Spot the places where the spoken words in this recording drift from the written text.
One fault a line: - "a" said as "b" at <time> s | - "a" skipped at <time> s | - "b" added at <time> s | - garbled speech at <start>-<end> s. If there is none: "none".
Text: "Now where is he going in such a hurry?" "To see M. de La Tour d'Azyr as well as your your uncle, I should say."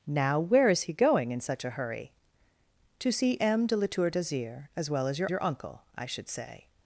none